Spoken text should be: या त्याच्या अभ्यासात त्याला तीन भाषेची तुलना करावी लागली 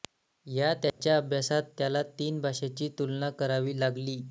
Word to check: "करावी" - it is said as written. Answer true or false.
true